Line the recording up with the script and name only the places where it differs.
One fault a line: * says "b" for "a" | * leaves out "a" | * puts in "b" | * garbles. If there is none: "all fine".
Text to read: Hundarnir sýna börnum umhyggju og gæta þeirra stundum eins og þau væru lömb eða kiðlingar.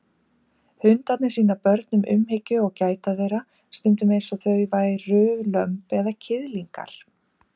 all fine